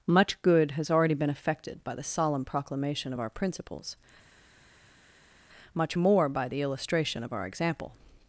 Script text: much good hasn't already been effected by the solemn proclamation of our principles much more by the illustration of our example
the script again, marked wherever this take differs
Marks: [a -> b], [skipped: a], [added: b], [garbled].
much good [hasn't -> has] already been effected by the solemn proclamation of our principles much more by the illustration of our example